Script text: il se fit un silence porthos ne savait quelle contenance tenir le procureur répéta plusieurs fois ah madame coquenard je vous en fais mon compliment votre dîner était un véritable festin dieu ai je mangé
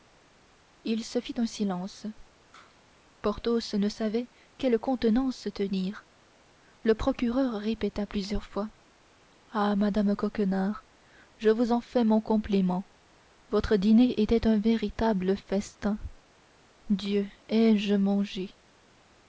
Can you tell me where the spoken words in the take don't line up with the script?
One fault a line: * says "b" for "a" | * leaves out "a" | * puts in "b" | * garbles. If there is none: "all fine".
all fine